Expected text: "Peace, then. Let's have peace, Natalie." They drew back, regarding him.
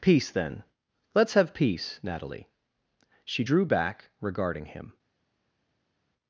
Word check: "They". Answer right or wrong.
wrong